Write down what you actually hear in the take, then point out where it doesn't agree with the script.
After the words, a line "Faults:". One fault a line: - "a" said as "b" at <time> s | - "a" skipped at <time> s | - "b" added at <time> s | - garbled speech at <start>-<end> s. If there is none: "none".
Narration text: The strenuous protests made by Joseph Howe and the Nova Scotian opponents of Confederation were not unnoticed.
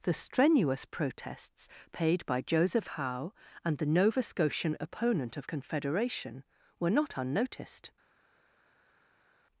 The strenuous protests paid by Joseph Howe and the Nova Scotian opponent of Confederation were not unnoticed.
Faults:
- "made" said as "paid" at 1.9 s
- "opponents" said as "opponent" at 4.8 s